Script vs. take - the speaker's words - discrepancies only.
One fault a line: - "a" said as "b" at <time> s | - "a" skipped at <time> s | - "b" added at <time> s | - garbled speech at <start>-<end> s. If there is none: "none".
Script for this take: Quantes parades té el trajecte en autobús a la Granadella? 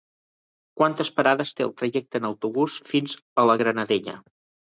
- "fins" added at 2.9 s